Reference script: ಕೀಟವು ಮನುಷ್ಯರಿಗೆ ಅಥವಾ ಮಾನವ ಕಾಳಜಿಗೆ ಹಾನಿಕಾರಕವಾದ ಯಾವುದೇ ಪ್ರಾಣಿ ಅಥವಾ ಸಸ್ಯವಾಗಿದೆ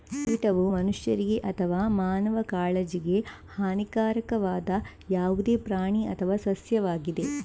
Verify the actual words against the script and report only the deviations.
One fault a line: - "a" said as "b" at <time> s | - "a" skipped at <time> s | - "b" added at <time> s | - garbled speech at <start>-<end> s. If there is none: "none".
none